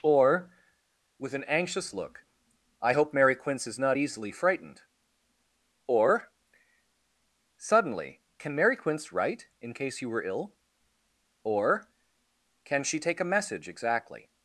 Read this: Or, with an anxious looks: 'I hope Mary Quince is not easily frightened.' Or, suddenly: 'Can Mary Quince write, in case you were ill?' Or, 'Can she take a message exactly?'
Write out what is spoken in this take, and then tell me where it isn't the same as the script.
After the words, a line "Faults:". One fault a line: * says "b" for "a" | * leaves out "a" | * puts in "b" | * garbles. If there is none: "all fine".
Or, with an anxious look: 'I hope Mary Quince is not easily frightened.' Or, suddenly: 'Can Mary Quince write, in case you were ill?' Or, 'Can she take a message exactly?'
Faults:
* says "look" for "looks"